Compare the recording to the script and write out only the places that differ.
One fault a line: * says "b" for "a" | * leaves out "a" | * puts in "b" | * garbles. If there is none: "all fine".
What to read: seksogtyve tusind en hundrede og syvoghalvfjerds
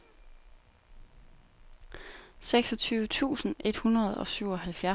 * says "et" for "en"